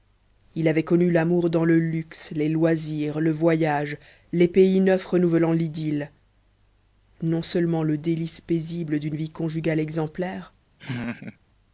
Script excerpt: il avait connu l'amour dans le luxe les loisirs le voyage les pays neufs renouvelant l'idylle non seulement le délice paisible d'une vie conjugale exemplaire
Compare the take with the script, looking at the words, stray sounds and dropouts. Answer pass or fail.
fail